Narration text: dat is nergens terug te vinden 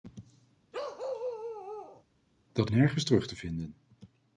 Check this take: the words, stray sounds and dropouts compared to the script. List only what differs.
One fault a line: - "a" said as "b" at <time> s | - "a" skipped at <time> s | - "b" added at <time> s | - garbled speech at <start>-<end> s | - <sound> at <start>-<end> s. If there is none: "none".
- bark at 0.7-2.0 s
- "is" skipped at 2.7 s